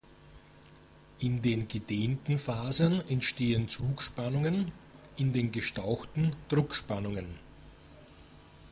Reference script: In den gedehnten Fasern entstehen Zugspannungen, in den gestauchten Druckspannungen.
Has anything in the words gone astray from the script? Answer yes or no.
no